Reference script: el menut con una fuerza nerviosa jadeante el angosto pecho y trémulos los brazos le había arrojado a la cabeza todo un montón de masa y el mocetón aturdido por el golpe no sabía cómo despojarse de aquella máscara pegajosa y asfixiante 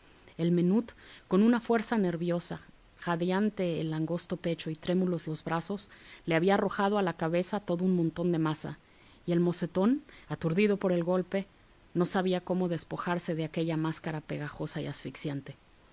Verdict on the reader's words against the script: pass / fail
pass